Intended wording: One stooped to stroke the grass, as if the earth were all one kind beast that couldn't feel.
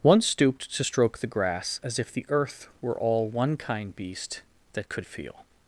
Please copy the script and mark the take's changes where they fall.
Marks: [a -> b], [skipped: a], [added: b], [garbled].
One stooped to stroke the grass, as if the earth were all one kind beast that [couldn't -> could] feel.